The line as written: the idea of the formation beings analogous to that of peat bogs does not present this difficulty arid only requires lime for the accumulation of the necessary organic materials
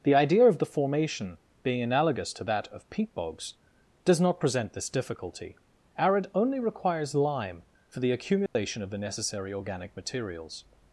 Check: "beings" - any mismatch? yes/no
yes